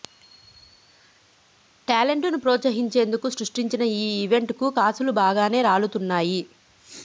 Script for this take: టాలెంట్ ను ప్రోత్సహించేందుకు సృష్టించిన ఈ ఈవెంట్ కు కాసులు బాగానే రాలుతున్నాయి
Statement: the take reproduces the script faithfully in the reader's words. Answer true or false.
true